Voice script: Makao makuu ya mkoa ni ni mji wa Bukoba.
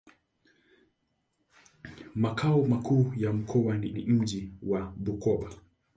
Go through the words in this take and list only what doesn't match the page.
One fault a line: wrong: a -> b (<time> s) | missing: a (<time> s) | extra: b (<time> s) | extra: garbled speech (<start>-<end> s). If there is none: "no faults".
no faults